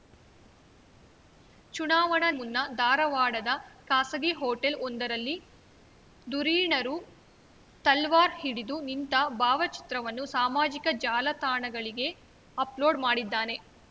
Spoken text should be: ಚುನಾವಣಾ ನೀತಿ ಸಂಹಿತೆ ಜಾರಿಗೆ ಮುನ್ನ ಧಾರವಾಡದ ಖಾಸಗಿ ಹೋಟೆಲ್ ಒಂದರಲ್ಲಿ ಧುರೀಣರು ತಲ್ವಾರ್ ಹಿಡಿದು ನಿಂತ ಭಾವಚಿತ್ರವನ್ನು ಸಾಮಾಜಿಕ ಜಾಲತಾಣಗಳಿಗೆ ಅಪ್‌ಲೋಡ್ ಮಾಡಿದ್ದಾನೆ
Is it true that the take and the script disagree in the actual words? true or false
true